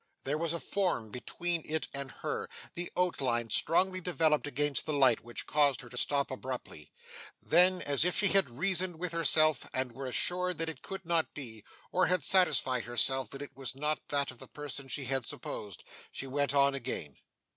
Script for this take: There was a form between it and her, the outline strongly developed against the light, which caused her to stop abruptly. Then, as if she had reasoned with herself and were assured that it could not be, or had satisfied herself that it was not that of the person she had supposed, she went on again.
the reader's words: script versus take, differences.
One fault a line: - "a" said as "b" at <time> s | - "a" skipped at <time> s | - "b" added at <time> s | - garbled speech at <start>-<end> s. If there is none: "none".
none